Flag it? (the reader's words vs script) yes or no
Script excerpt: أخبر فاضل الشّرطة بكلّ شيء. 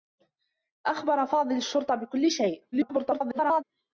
yes